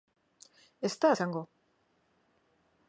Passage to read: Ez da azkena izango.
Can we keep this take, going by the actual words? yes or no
no